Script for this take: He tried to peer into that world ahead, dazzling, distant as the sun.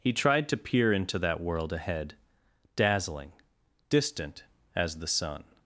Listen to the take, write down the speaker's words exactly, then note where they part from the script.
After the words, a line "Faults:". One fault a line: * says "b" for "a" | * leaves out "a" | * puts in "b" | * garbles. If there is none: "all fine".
He tried to peer into that world ahead, dazzling, distant as the sun.
Faults:
all fine